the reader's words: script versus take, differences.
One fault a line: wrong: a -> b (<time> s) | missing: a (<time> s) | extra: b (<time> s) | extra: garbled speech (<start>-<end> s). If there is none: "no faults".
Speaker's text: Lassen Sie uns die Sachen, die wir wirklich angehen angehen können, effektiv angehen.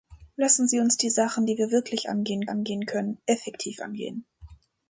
no faults